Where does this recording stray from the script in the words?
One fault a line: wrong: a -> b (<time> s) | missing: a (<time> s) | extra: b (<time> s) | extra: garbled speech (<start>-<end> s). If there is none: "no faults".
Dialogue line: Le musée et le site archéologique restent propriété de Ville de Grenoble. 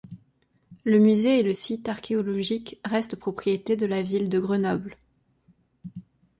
extra: la (3.8 s)